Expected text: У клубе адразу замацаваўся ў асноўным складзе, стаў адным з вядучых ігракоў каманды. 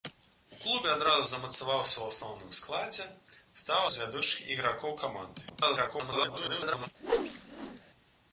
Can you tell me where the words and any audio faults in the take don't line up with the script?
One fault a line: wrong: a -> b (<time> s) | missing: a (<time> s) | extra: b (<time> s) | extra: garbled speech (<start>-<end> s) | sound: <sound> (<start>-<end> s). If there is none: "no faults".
missing: адным (3.8 s)
extra: garbled speech (5.5-6.9 s)
sound: whoosh (7.0-7.8 s)